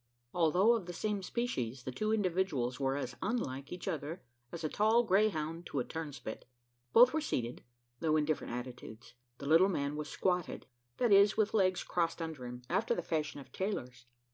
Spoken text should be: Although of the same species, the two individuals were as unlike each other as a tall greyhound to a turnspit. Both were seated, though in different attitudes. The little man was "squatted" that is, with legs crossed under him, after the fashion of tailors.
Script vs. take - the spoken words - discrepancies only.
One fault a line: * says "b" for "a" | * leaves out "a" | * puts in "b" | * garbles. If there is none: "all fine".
all fine